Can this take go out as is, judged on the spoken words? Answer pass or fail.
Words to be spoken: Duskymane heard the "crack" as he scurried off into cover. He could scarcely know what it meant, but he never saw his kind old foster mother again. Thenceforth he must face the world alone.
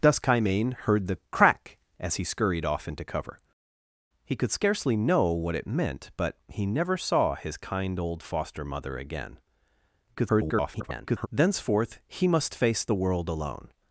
fail